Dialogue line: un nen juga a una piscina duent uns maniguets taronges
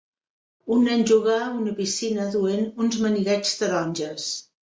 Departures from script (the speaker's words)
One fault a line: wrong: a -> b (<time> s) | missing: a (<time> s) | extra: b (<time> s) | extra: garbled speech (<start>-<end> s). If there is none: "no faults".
no faults